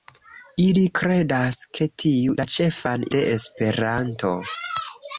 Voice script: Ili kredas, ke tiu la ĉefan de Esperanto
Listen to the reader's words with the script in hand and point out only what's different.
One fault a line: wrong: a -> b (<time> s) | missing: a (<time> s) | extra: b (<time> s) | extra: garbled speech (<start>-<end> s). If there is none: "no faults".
no faults